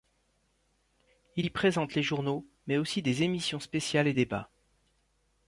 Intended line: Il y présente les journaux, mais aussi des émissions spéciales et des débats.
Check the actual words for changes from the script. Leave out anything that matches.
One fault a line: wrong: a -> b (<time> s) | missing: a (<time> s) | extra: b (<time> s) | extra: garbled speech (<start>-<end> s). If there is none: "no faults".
missing: des (4.1 s)